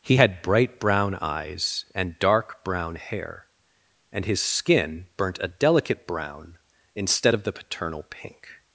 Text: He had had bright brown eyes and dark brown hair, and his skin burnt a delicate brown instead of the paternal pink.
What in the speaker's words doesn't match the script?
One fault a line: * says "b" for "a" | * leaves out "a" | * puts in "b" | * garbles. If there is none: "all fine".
* leaves out "had"